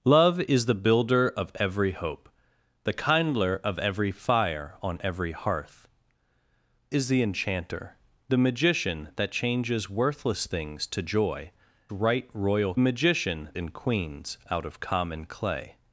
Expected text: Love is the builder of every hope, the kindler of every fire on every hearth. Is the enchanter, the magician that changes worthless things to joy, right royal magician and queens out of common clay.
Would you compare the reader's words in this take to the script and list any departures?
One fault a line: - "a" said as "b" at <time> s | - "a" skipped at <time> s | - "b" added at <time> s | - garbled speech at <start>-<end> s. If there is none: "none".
none